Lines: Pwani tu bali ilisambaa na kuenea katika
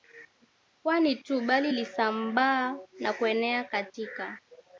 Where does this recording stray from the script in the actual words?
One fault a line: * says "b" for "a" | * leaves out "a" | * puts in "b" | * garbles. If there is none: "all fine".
all fine